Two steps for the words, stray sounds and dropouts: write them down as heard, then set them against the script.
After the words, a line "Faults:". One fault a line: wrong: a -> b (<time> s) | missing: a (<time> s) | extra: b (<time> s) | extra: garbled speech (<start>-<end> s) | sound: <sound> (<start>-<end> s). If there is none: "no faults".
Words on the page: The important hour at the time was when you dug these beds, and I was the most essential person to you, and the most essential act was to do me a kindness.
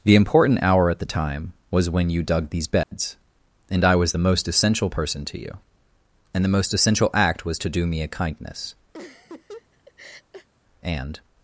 The important hour at the time was when you dug these beds, and I was the most essential person to you, and the most essential act was to do me a kindness. And
Faults:
sound: dropout (2.8-2.9 s)
sound: laugh (8.9-10.5 s)
extra: And (10.8 s)